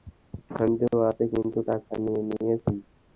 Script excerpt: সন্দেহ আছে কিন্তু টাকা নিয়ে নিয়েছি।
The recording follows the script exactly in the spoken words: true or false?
true